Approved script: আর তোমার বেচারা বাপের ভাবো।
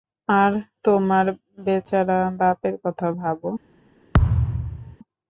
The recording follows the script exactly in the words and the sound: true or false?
false